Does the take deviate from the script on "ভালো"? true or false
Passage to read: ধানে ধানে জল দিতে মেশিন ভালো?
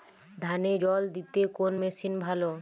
false